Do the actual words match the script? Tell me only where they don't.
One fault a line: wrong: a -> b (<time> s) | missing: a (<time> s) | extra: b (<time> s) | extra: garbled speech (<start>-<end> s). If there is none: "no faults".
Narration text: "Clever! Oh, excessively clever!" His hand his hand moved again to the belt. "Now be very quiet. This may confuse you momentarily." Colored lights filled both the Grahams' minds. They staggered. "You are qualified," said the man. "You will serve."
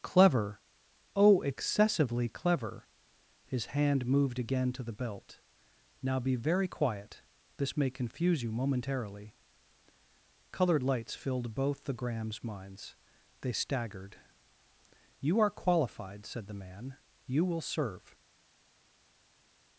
missing: his hand (4.1 s)